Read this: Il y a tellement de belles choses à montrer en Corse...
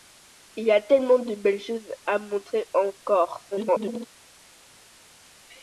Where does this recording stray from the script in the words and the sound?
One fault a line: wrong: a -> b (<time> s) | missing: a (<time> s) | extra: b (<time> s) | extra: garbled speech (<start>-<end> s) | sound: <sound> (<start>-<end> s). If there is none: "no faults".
extra: garbled speech (3.5-4.1 s)